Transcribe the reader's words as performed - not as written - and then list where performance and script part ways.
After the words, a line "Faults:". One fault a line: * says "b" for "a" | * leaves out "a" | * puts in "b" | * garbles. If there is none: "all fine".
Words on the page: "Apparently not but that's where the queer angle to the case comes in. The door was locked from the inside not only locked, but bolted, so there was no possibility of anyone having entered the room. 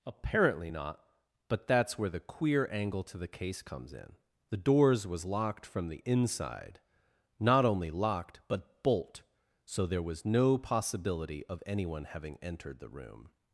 "Apparently not but that's where the queer angle to the case comes in. The doors was locked from the inside not only locked, but bolt, so there was no possibility of anyone having entered the room.
Faults:
* says "doors" for "door"
* says "bolt" for "bolted"